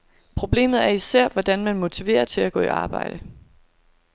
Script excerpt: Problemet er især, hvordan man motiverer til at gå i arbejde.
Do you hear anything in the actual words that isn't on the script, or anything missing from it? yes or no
no